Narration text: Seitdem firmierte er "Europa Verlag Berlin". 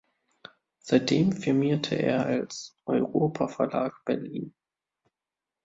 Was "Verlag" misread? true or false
false